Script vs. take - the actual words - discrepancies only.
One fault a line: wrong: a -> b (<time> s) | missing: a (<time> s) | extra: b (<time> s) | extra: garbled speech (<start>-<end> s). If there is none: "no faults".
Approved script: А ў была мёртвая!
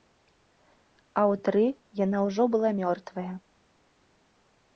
extra: тры яна ўжо (1.5 s)